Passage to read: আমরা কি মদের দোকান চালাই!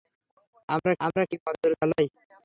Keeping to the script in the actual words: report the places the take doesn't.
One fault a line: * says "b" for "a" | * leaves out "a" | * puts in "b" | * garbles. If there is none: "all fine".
* puts in "আমরা"
* leaves out "দোকান"